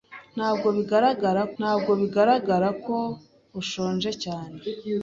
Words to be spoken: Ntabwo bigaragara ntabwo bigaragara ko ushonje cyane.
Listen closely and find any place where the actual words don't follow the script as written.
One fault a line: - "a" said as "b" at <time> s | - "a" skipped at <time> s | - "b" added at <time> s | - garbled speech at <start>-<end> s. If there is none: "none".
none